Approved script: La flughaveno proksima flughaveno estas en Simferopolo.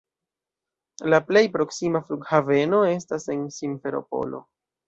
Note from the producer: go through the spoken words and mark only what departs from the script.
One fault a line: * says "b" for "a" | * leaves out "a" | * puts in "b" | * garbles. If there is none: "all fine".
* says "plej" for "flughaveno"